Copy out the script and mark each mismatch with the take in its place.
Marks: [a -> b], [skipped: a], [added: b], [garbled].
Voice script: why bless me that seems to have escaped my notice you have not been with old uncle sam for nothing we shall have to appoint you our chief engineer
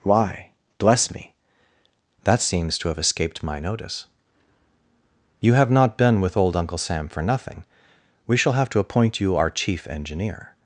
why bless me that seems to have escaped my notice you have not been with old uncle sam for nothing we shall have to appoint you our chief engineer